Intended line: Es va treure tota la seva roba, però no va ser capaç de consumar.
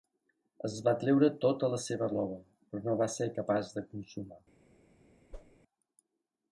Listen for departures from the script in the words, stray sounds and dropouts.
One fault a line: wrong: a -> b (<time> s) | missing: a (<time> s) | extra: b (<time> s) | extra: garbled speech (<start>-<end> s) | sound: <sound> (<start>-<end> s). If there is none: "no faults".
sound: whoosh (5.3-5.6 s)